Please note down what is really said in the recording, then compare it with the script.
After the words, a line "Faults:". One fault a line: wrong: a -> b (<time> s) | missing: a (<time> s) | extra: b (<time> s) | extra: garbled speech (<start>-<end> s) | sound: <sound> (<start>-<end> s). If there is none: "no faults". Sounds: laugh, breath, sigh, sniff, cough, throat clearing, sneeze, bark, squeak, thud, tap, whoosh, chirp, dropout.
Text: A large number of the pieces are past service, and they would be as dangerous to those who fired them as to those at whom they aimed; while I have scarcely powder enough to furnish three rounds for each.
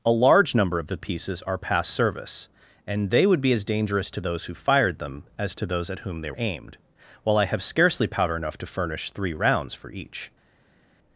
A large number of the pieces are past service, and they would be as dangerous to those who fired them as to those at whom they aimed; while I have scarcely powder enough to furnish three rounds for each.
Faults:
no faults